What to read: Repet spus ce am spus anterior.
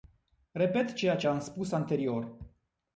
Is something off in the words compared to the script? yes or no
yes